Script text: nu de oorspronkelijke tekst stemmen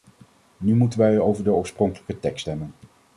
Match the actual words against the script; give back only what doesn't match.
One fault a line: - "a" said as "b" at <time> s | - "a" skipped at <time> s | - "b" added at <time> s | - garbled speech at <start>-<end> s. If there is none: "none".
- "moeten wij over" added at 0.8 s